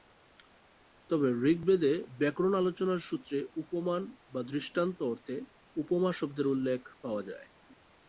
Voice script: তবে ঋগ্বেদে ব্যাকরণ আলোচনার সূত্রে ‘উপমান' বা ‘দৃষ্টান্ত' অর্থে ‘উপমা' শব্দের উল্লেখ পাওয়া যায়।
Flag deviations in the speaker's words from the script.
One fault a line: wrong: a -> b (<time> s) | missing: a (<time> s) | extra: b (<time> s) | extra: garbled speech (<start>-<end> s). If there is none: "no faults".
no faults